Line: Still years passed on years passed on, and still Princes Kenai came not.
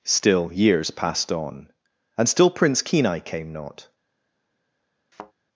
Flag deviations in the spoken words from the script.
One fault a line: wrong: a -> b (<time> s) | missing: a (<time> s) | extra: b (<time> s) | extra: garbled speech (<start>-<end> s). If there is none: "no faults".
missing: years passed on (1.7 s)
wrong: Princes -> Prince (2.5 s)